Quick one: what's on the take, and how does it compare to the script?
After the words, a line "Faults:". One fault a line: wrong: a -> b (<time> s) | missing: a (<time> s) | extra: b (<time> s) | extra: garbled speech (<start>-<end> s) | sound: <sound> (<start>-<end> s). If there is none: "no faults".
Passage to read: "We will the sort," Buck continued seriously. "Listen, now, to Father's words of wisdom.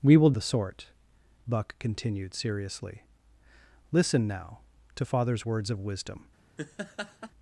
"We will the sort," Buck continued seriously. "Listen, now, to Father's words of wisdom.
Faults:
sound: laugh (6.6-7.3 s)